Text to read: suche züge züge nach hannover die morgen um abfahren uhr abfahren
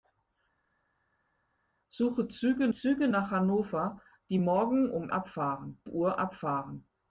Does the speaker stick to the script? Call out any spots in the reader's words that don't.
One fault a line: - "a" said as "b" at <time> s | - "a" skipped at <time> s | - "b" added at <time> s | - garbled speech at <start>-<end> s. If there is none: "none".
none